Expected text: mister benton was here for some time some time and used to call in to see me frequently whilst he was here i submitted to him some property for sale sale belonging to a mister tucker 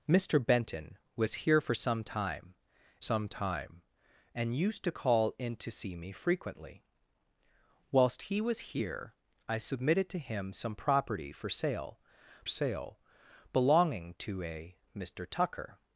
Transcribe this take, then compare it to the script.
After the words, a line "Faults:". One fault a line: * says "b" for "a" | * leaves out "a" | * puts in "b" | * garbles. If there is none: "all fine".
mister benton was here for some time some time and used to call in to see me frequently whilst he was here i submitted to him some property for sale sale belonging to a mister tucker
Faults:
all fine